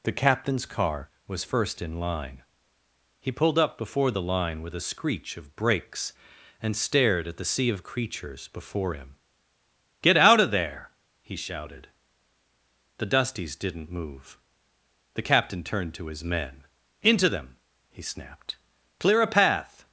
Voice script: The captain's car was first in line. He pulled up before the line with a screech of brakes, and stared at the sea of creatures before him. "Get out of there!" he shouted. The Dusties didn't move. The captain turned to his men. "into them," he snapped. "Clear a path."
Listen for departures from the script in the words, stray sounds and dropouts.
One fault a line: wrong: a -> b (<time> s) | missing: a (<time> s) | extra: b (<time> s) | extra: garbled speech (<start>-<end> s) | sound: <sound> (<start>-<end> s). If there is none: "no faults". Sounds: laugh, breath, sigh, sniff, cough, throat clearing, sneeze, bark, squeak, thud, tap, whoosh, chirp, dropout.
no faults